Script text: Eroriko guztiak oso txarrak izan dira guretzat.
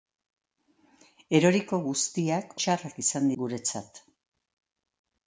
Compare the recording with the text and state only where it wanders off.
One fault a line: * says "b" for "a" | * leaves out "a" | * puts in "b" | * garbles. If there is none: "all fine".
* leaves out "oso"
* leaves out "dira"